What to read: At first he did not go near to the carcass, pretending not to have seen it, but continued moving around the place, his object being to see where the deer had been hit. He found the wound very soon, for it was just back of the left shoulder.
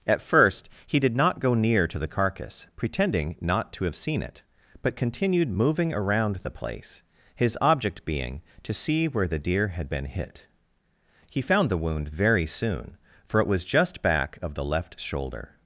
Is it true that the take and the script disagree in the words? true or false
false